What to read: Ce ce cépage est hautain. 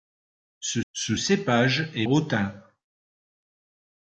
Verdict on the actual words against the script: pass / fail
pass